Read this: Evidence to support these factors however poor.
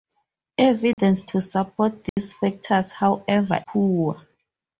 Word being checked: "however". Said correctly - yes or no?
yes